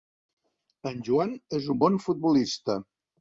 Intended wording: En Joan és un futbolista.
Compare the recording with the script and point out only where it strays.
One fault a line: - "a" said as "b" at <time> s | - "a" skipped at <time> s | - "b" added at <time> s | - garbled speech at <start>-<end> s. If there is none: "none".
- "bon" added at 1.8 s